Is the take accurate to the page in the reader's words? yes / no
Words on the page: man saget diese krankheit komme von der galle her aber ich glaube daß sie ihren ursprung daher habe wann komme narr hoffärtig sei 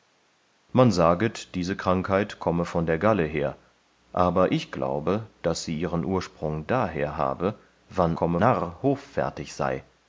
yes